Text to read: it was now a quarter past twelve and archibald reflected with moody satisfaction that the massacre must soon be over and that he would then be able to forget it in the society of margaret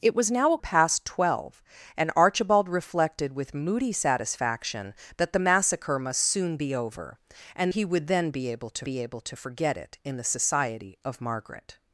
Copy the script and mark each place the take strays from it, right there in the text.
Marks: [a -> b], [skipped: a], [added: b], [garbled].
it was now a [skipped: quarter] past twelve and archibald reflected with moody satisfaction that the massacre must soon be over and [skipped: that] he would then be able to [added: be able to] forget it in the society of margaret